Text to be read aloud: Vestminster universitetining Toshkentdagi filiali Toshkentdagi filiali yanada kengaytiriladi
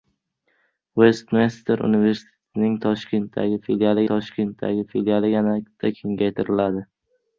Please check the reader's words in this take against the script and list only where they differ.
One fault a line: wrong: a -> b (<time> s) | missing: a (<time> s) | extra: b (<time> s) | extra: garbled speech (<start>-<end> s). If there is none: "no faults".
no faults